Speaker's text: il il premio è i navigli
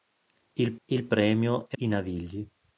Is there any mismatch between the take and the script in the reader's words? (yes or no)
no